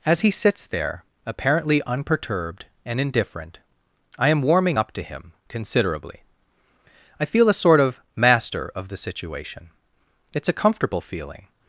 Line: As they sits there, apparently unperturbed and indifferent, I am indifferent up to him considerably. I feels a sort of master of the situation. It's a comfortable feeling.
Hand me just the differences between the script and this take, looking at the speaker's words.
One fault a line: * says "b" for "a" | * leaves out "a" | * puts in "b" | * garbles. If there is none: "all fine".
* says "he" for "they"
* says "warming" for "indifferent"
* says "feel" for "feels"